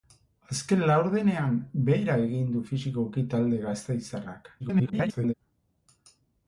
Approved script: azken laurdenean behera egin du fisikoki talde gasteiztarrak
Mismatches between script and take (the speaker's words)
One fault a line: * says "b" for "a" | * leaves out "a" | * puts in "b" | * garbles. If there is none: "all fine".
* garbles